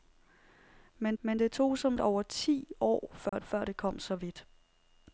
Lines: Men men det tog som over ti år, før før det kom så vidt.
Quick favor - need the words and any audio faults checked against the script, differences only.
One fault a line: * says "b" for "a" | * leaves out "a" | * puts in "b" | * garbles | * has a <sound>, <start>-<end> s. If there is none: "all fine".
* has a dropout, 3.3-3.3 s